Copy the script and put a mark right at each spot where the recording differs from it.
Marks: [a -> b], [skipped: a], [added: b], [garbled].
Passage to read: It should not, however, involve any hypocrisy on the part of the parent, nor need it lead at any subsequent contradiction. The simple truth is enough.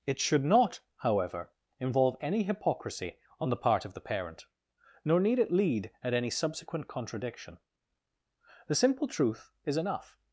It should not, however, involve any hypocrisy on the part of the parent, nor need it lead at any subsequent contradiction. The simple truth is enough.